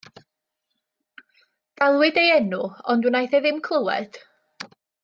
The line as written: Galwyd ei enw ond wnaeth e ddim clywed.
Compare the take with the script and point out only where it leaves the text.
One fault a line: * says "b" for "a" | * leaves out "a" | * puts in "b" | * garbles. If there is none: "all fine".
all fine